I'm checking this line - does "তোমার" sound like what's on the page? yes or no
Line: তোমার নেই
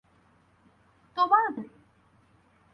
yes